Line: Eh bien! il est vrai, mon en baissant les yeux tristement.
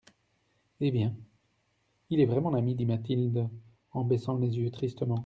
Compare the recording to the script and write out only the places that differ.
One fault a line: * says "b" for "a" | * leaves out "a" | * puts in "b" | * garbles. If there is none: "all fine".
* puts in "ami dit Mathilde"